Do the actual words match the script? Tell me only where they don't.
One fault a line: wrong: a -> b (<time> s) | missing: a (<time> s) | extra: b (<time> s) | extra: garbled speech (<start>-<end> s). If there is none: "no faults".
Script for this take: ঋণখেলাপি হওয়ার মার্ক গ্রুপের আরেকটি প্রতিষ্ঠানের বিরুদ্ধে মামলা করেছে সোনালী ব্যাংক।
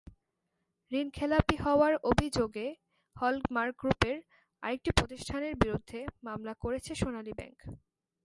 extra: অভিযোগে হল (2.1 s)